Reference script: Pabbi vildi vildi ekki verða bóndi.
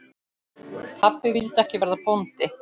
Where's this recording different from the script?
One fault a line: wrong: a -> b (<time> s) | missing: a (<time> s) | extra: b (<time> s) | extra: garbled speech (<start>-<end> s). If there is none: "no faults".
missing: vildi (1.6 s)